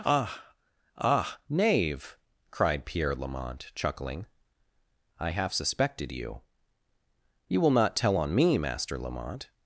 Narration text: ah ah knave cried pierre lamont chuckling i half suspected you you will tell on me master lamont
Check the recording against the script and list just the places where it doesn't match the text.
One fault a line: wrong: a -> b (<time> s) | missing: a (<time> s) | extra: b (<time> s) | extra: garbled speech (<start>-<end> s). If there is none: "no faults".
extra: not (7.7 s)